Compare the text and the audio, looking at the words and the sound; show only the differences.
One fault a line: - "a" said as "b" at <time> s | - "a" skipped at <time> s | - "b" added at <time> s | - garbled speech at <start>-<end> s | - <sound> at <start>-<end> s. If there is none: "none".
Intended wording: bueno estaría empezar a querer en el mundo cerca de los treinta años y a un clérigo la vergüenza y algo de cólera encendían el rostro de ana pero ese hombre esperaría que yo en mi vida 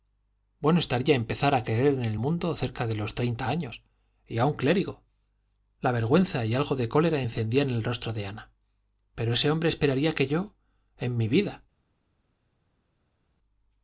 none